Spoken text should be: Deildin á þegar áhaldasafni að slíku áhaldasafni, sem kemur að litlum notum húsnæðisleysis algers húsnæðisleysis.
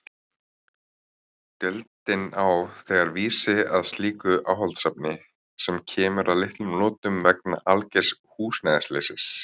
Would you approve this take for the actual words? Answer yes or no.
no